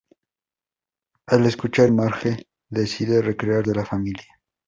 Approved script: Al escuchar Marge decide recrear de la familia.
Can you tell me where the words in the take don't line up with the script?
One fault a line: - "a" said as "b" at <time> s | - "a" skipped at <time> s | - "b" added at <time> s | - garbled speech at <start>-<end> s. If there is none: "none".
none